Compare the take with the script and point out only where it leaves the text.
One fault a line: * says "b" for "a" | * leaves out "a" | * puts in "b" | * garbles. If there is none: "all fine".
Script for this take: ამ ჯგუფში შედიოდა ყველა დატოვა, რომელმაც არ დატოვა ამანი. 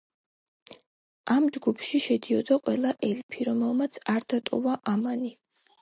* says "ელფი" for "დატოვა"